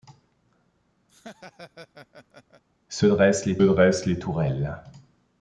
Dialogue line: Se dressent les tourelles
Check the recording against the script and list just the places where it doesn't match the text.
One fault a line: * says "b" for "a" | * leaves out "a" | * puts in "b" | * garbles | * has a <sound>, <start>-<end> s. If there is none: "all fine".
* has a laugh, 1.1-2.6 s
* puts in "dressent les"